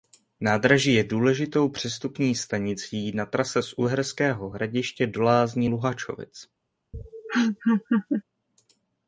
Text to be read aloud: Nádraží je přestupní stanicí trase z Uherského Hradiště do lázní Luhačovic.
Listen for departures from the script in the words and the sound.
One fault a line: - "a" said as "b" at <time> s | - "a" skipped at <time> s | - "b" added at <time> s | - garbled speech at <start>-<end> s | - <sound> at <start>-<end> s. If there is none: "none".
- "důležitou" added at 1.0 s
- "na" added at 3.1 s
- laugh at 6.9-8.2 s